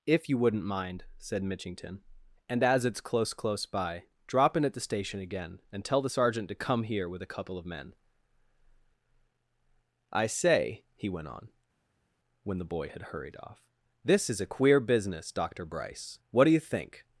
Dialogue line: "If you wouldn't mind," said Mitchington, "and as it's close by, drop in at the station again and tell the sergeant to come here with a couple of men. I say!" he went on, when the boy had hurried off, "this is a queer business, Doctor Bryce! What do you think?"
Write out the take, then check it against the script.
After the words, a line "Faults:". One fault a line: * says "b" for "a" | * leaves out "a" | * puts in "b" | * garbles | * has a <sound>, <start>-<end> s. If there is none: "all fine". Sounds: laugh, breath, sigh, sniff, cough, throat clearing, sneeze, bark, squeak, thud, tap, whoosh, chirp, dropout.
"If you wouldn't mind," said Mitchington, "and as it's close close by, drop in at the station again and tell the sergeant to come here with a couple of men. I say!" he went on, when the boy had hurried off, "this is a queer business, Doctor Bryce! What do you think?"
Faults:
* puts in "close"